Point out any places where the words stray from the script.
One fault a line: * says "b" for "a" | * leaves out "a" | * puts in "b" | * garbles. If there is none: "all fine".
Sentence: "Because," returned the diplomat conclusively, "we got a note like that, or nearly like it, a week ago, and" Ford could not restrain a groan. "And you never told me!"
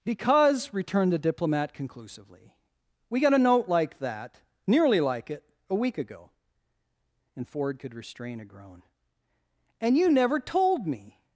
* leaves out "or"
* leaves out "not"